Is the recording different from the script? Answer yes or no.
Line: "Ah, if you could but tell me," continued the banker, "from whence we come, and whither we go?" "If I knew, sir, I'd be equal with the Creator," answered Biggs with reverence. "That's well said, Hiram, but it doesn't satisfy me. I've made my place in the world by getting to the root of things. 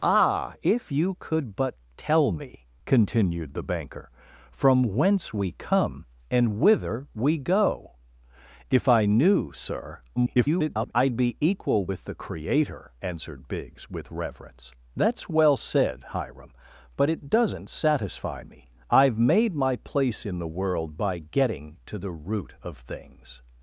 yes